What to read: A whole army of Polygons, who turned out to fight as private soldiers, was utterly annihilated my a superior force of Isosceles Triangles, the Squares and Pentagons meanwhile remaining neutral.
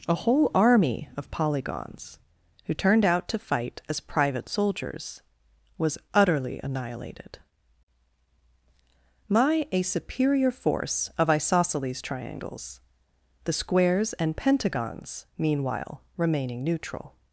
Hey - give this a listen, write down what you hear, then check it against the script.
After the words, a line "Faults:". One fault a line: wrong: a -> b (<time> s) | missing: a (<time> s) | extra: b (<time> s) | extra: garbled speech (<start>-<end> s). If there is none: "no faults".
A whole army of Polygons, who turned out to fight as private soldiers, was utterly annihilated my a superior force of Isosceles Triangles, the Squares and Pentagons meanwhile remaining neutral.
Faults:
no faults